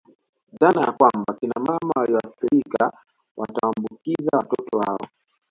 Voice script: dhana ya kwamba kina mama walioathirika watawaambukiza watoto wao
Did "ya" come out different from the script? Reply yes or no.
no